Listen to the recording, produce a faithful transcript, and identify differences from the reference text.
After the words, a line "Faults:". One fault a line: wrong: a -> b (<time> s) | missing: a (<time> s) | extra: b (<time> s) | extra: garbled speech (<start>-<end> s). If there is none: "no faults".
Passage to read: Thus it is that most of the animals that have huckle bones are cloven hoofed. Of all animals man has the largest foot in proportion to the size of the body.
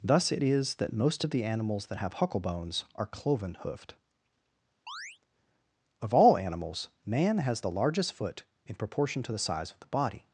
Thus it is that most of the animals that have huckle bones are cloven hoofed. Of all animals man has the largest foot in proportion to the size of the body.
Faults:
no faults